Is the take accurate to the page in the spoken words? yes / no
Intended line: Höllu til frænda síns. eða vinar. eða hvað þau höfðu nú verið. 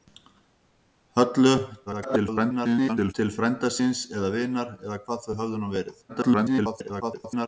no